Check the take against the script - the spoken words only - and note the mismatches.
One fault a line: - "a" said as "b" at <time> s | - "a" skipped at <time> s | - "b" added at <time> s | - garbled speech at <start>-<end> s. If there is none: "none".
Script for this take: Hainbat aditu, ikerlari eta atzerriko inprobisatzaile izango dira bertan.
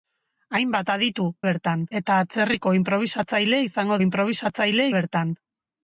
- "ikerlari" said as "bertan" at 1.5 s
- "dira" said as "inprobisatzaile" at 4.0 s